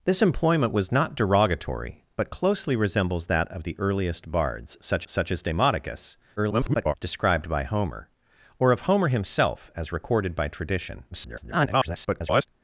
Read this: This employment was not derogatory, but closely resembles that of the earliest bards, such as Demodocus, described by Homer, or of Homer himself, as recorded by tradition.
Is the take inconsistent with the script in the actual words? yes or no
yes